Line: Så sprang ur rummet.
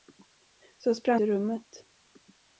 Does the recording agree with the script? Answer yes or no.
yes